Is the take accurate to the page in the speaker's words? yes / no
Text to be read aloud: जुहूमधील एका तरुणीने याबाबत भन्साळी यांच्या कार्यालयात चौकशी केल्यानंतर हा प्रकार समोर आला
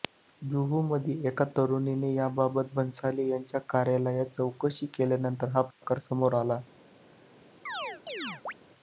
yes